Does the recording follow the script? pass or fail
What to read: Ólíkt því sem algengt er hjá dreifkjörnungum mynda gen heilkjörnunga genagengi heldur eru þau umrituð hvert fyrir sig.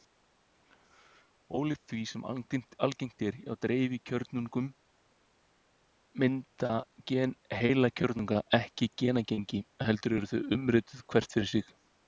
fail